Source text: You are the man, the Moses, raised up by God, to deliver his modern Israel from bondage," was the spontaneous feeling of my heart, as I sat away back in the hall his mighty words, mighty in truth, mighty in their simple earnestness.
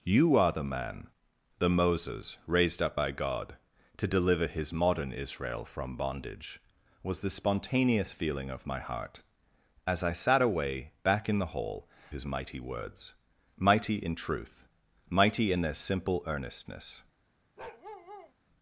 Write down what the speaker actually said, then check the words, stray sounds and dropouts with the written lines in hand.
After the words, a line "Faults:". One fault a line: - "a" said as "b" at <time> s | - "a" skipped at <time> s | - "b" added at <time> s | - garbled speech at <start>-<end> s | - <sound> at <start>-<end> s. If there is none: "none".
You are the man, the Moses, raised up by God, to deliver his modern Israel from bondage," was the spontaneous feeling of my heart, as I sat away back in the hall his mighty words, mighty in truth, mighty in their simple earnestness.
Faults:
- bark at 17.6-18.3 s